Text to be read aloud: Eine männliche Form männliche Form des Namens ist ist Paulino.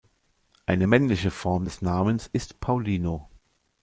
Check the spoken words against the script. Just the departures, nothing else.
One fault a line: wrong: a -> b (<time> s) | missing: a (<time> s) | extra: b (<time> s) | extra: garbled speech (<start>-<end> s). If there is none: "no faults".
missing: männliche Form (1.6 s)
missing: ist (2.6 s)